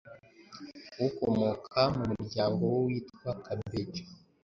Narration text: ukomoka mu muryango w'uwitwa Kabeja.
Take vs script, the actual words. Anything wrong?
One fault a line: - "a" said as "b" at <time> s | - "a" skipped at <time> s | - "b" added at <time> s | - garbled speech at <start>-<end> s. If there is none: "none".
none